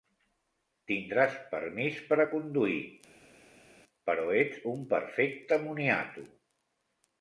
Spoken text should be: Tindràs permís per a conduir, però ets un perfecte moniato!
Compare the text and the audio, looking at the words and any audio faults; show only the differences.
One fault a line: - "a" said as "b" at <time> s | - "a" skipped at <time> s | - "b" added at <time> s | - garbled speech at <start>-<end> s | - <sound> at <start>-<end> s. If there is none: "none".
none